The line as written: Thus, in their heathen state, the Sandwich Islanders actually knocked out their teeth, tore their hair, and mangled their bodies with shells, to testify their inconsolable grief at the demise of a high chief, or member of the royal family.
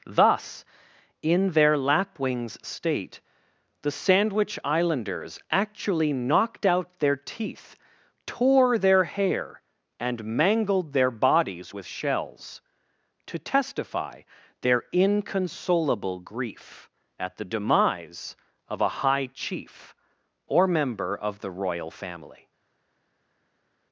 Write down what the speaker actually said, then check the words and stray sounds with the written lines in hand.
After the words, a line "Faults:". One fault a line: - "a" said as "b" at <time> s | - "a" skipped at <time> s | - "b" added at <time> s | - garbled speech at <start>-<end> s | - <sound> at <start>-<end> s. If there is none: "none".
Thus, in their lapwings state, the Sandwich Islanders actually knocked out their teeth, tore their hair, and mangled their bodies with shells, to testify their inconsolable grief at the demise of a high chief, or member of the royal family.
Faults:
- "heathen" said as "lapwings" at 1.8 s